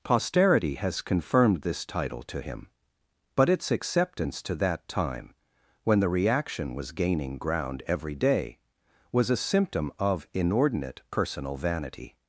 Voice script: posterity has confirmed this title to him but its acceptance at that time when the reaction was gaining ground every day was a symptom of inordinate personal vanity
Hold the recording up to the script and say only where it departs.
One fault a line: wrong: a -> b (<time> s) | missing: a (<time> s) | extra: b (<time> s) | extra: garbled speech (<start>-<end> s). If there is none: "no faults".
wrong: at -> to (4.4 s)